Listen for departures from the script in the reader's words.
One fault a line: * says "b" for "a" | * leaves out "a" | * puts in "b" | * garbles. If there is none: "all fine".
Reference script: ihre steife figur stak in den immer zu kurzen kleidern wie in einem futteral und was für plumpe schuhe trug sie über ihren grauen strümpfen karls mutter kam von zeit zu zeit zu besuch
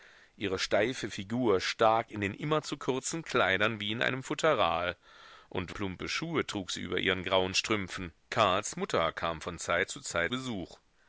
* leaves out "was für"
* leaves out "zu"